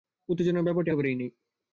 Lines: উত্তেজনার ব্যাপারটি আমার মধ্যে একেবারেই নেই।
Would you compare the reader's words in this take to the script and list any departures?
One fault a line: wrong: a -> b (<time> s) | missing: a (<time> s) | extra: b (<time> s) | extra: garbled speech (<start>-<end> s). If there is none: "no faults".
missing: আমার মধ্যে (0.9 s)